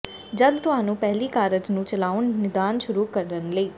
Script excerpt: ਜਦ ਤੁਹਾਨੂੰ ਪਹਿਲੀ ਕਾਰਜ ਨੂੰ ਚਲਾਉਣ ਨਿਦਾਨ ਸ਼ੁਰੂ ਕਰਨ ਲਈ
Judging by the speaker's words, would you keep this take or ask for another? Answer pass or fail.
pass